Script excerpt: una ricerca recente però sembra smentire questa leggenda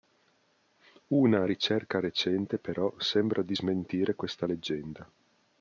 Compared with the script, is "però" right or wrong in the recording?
right